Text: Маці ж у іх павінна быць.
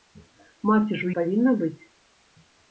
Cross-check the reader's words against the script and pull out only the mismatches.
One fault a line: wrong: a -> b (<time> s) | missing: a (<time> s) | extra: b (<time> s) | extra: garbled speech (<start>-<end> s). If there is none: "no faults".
missing: іх (1.1 s)